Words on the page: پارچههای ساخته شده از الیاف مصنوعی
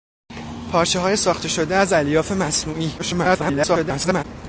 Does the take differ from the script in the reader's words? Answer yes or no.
yes